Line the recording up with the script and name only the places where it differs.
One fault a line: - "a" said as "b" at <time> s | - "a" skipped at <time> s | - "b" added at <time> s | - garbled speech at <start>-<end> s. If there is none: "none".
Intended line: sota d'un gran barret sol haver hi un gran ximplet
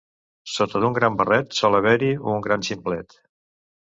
none